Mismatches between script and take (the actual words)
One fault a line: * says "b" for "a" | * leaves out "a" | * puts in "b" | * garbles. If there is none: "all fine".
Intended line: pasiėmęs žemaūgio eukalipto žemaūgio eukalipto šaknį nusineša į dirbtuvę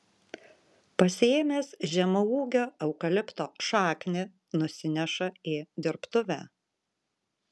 * leaves out "žemaūgio eukalipto"